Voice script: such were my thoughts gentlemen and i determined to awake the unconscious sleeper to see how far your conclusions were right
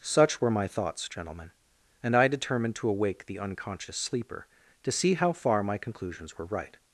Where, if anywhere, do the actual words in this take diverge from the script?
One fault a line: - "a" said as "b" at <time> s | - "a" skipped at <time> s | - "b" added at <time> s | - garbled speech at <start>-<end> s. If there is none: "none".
- "your" said as "my" at 5.6 s